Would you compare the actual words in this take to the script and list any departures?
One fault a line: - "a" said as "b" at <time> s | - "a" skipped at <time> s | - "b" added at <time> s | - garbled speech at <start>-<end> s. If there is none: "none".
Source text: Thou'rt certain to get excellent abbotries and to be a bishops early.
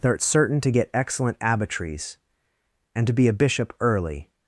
- "bishops" said as "bishop" at 3.3 s